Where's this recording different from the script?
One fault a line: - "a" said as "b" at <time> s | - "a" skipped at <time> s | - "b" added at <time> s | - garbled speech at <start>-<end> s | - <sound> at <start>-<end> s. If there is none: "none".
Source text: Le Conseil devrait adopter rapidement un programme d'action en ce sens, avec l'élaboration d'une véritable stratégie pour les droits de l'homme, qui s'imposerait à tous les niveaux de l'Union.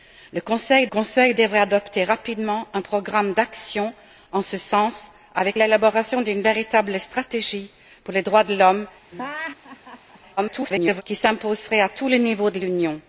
- "Conseil" added at 0.9 s
- laugh at 9.1-10.2 s
- garbled speech at 10.4-11.0 s